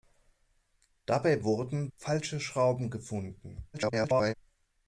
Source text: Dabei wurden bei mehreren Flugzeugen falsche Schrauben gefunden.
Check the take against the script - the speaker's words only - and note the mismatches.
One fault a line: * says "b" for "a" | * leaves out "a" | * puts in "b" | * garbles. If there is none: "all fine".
* leaves out "bei mehreren Flugzeugen"
* garbles